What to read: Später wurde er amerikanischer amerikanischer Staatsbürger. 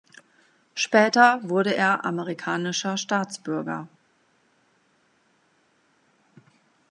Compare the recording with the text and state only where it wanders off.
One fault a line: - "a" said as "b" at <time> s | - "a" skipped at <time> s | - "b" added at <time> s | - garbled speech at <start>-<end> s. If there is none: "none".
- "amerikanischer" skipped at 3.0 s